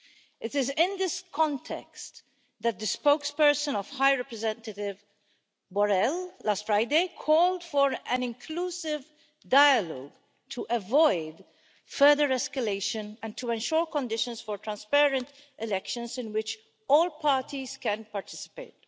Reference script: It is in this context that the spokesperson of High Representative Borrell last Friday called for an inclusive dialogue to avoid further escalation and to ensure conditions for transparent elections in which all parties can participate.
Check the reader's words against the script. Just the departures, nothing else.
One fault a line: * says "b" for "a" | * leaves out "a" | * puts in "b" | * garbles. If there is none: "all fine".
all fine